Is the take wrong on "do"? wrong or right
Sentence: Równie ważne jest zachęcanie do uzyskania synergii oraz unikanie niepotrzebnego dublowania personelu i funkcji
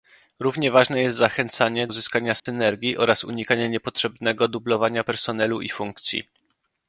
wrong